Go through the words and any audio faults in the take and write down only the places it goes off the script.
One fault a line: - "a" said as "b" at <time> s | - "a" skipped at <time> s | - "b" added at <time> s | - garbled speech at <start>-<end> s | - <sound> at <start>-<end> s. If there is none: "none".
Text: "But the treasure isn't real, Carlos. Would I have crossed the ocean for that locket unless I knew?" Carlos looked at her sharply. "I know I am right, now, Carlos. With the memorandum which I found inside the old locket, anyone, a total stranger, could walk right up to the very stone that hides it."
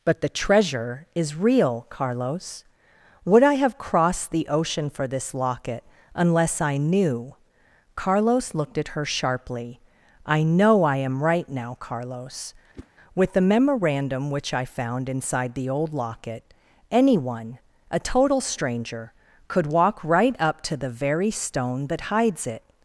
- "isn't" said as "is" at 1.1 s
- "that" said as "this" at 5.1 s
- whoosh at 12.7-12.9 s